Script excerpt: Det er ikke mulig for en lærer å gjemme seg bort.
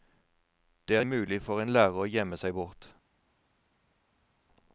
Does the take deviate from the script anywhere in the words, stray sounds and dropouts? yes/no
yes